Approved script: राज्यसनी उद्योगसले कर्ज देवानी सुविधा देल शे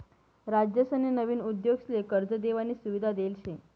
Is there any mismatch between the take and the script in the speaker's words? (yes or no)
yes